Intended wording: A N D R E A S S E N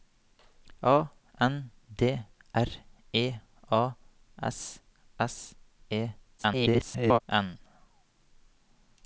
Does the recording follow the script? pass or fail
fail